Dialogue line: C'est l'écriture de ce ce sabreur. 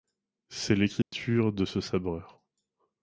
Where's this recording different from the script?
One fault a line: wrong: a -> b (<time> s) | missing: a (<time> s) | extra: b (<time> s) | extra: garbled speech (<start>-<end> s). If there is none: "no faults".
missing: ce (1.8 s)